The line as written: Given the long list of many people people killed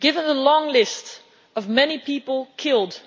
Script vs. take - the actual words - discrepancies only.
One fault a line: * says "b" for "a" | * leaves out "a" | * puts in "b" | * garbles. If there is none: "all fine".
* leaves out "people"